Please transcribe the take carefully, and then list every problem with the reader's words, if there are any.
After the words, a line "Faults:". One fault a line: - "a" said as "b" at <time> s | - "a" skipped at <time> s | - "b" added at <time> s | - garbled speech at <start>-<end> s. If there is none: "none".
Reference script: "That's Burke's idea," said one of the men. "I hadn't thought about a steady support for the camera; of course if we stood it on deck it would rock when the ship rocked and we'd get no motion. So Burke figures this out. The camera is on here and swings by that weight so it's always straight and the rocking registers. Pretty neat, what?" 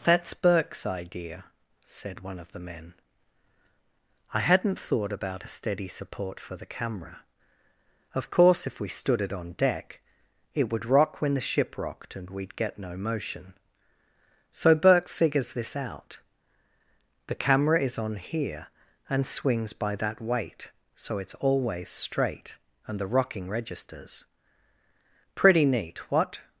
"That's Burke's idea," said one of the men. "I hadn't thought about a steady support for the camera; of course if we stood it on deck it would rock when the ship rocked and we'd get no motion. So Burke figures this out. The camera is on here and swings by that weight so it's always straight and the rocking registers. Pretty neat, what?"
Faults:
none